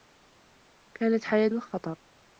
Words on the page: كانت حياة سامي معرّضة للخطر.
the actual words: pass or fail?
fail